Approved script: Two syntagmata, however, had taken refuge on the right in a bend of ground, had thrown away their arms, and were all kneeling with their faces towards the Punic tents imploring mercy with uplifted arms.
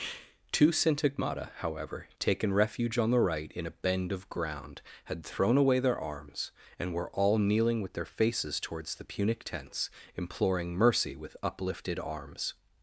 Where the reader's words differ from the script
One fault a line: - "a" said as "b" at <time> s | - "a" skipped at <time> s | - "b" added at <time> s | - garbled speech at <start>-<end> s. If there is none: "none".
- "had" skipped at 2.1 s